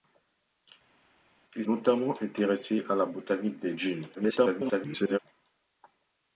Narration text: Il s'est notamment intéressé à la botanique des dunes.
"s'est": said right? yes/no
no